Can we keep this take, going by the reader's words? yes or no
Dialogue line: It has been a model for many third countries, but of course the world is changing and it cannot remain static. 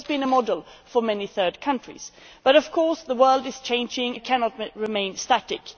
no